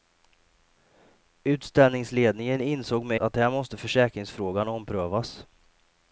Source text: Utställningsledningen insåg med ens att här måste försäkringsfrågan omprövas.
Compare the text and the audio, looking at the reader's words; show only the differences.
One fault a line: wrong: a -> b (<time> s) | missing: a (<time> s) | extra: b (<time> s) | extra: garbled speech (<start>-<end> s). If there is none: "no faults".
missing: ens (3.2 s)